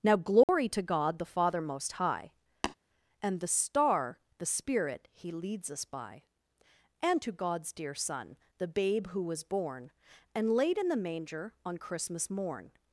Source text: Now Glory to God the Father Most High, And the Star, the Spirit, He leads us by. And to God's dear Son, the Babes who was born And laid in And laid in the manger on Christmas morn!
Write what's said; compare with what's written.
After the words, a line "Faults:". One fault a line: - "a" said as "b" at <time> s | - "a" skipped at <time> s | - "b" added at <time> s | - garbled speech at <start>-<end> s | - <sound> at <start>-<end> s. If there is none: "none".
Now Glory to God the Father Most High, And the Star, the Spirit, He leads us by. And to God's dear Son, the Babe who was born And laid in the manger on Christmas morn!
Faults:
- dropout at 0.4-0.5 s
- tap at 2.6-2.8 s
- "Babes" said as "Babe" at 8.7 s
- "And laid in" skipped at 10.9 s